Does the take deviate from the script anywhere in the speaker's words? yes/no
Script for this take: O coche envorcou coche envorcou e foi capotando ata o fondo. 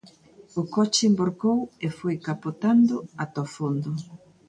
yes